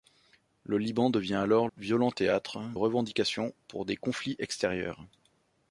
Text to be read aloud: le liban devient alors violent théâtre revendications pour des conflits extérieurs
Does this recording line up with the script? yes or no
yes